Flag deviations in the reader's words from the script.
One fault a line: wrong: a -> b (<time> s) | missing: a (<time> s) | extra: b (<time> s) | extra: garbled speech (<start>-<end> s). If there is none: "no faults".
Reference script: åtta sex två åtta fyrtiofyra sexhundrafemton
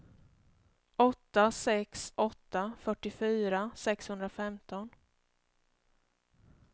missing: två (2.1 s)